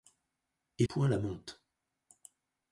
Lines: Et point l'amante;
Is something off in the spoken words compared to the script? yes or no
no